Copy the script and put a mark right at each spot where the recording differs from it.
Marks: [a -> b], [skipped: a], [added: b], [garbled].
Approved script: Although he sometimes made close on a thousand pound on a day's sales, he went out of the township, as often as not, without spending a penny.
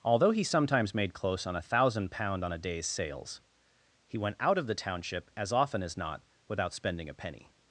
Although he sometimes made close on a thousand pound on a day's sales, he went out of the township, as often as not, without spending a penny.